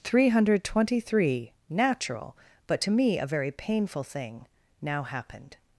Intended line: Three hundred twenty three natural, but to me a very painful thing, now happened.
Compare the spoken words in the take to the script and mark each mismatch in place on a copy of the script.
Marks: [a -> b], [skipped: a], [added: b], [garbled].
Three hundred twenty three natural, but to me a very painful thing, now happened.